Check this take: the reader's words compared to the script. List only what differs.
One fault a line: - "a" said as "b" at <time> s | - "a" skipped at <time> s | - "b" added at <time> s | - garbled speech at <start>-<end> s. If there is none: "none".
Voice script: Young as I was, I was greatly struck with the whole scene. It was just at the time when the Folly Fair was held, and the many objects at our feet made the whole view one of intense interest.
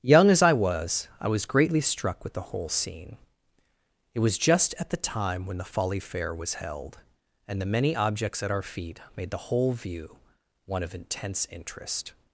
none